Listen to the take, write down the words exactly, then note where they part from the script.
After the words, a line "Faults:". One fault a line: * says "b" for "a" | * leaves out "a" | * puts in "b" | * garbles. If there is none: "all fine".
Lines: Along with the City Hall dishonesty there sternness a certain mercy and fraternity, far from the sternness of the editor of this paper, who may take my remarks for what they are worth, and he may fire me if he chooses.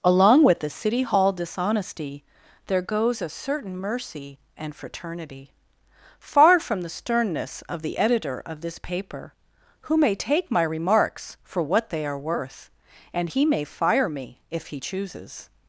Along with the City Hall dishonesty there goes a certain mercy and fraternity, far from the sternness of the editor of this paper, who may take my remarks for what they are worth, and he may fire me if he chooses.
Faults:
* says "goes" for "sternness"